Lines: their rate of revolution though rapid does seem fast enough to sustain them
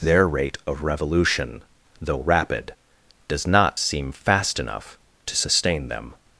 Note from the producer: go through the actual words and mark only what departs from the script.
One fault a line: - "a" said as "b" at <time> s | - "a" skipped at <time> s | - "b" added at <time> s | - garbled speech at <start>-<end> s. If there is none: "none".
- "not" added at 3.5 s